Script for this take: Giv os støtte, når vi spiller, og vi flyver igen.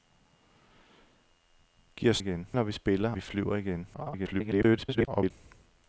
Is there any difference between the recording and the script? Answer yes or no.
yes